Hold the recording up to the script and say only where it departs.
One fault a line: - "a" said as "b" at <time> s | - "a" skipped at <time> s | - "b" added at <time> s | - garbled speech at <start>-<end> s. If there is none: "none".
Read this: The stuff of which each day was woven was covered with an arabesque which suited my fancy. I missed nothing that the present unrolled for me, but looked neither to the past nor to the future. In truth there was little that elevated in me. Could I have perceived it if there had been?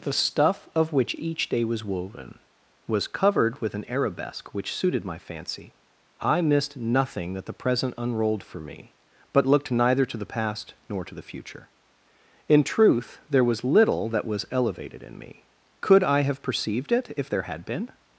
- "was" added at 14.2 s